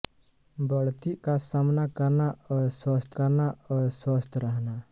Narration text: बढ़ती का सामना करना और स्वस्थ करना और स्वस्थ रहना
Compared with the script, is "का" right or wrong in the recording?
right